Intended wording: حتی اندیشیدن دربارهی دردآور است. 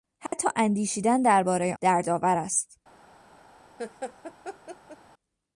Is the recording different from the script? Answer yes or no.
no